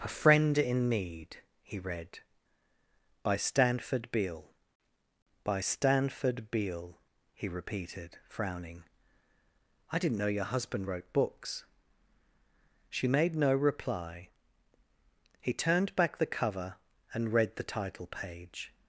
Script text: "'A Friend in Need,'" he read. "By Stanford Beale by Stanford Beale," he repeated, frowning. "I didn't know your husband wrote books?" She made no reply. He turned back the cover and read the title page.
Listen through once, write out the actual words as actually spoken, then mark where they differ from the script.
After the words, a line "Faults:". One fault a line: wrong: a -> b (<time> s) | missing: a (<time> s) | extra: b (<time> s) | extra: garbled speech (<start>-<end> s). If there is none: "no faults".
"'A Friend in Need,'" he read. "By Stanford Beale by Stanford Beale," he repeated, frowning. "I didn't know your husband wrote books?" She made no reply. He turned back the cover and read the title page.
Faults:
no faults